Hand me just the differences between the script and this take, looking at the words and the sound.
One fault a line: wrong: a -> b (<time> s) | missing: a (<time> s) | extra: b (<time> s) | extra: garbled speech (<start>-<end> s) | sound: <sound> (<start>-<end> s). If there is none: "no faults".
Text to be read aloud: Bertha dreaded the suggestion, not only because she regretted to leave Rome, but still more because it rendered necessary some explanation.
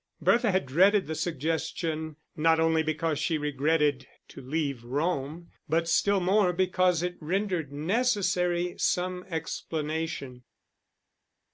extra: had (0.5 s)